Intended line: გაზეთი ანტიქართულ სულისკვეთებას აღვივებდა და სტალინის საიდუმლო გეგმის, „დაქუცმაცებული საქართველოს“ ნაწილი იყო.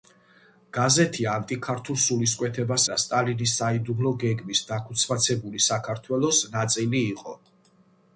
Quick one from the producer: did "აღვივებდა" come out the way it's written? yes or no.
no